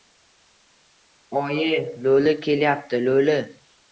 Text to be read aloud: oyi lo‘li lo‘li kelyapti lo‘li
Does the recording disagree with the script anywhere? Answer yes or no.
yes